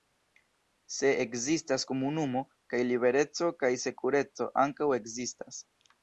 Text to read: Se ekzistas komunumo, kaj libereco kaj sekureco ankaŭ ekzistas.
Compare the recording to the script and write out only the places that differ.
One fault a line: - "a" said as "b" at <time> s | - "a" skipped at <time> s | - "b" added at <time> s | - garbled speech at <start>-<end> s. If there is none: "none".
none